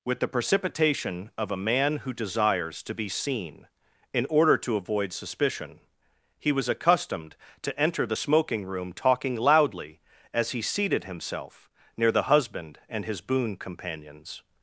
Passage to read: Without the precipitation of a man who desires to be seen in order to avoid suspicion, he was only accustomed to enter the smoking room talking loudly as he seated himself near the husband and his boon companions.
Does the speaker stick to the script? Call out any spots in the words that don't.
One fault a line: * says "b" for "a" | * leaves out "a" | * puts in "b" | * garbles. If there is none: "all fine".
* says "With" for "Without"
* leaves out "only"